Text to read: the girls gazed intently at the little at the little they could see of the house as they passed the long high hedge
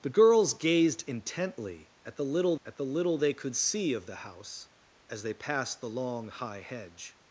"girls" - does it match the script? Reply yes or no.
yes